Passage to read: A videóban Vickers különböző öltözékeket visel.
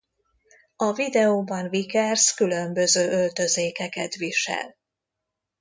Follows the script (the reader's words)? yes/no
yes